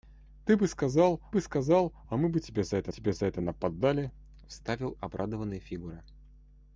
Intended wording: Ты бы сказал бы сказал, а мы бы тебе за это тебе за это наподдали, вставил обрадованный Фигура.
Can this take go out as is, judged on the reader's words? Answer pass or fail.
pass